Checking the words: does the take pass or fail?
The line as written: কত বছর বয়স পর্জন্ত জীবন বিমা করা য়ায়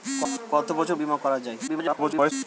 fail